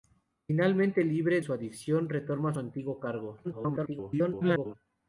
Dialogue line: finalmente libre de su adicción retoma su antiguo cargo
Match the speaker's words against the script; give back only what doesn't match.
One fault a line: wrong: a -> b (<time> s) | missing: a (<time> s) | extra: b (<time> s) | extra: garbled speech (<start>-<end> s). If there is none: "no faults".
missing: de (1.4 s)
missing: su (2.5 s)
extra: garbled speech (3.4-4.7 s)